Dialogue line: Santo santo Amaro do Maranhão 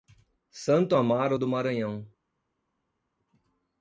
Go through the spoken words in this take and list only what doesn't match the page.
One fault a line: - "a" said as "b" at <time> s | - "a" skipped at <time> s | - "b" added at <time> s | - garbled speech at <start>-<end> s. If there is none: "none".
- "santo" skipped at 0.9 s